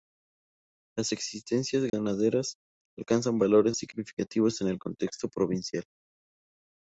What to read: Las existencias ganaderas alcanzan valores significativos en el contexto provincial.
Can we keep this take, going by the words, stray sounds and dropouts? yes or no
no